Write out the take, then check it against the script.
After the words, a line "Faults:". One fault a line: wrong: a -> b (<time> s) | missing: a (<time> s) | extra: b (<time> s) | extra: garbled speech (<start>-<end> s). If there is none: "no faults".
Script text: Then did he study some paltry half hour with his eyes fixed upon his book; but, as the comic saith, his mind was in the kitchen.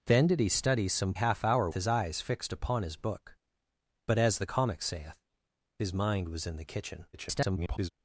Then did he study some half hour his eyes fixed upon his book; but, as the comic saith, his mind was in the kitchen. [garbled]
Faults:
missing: paltry (1.1 s)
missing: with (1.7 s)
extra: garbled speech (7.1-7.9 s)